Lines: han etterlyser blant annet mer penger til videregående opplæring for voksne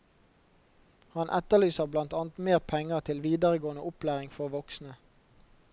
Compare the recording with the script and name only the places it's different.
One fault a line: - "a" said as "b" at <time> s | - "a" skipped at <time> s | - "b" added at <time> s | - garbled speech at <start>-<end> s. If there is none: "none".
none